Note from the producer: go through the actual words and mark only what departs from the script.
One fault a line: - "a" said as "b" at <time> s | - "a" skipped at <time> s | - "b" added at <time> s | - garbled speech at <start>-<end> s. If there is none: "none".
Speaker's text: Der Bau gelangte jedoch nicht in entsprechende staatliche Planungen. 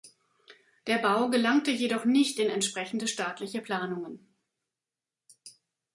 none